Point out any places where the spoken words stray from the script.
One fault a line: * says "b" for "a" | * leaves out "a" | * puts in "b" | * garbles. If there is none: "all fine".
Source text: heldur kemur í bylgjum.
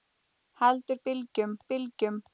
* says "bylgjum" for "kemur"